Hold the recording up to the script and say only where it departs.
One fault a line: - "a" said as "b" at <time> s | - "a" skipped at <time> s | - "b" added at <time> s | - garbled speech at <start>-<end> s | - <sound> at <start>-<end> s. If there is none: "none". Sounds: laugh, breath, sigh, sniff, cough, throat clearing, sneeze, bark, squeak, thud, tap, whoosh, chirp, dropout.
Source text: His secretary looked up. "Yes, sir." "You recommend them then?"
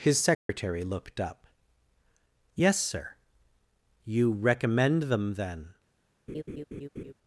- dropout at 0.3-0.5 s
- laugh at 6.3-7.1 s